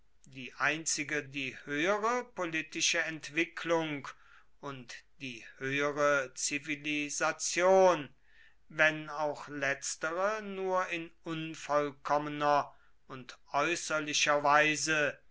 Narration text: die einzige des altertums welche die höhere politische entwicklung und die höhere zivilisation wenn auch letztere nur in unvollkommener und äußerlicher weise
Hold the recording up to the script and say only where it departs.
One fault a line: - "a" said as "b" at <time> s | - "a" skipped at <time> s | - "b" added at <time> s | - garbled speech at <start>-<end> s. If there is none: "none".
- "des altertums welche" skipped at 1.2 s